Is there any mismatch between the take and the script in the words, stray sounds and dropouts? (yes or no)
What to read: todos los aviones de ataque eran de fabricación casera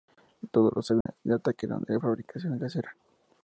yes